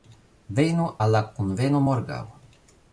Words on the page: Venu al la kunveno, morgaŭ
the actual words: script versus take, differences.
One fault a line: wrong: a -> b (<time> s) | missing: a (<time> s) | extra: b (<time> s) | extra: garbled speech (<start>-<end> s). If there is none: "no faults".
no faults